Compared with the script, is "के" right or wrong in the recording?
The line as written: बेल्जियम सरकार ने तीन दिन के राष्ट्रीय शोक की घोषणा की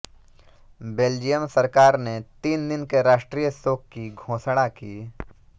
right